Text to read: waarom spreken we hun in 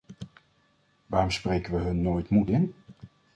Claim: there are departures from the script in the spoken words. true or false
true